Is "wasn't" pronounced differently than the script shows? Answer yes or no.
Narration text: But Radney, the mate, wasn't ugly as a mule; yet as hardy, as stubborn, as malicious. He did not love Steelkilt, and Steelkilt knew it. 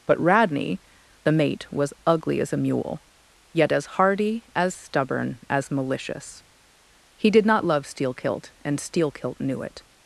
yes